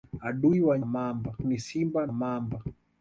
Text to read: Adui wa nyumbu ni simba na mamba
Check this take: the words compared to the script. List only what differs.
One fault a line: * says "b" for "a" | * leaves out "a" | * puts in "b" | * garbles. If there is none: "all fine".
* says "mamba" for "nyumbu"
* leaves out "na"